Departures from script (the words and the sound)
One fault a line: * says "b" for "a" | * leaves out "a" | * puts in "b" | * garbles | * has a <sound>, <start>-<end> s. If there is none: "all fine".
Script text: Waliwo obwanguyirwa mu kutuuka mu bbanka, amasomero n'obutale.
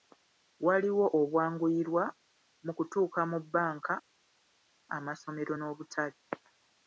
all fine